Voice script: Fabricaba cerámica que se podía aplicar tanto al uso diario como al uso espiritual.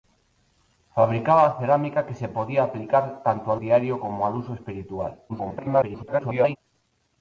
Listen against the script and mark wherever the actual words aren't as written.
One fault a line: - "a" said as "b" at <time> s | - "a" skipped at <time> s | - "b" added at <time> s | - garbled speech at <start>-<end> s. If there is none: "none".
- "uso" skipped at 3.6 s
- garbled speech at 5.3-6.6 s